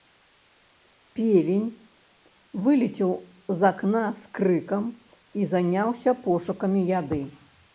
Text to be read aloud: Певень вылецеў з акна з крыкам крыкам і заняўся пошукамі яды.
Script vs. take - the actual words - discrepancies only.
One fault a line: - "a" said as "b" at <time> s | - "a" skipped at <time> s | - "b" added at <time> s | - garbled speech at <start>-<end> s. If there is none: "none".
- "крыкам" skipped at 4.8 s